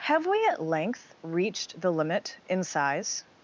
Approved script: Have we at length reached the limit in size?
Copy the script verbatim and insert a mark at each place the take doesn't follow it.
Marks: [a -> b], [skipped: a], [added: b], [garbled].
Have we at length reached the limit in size?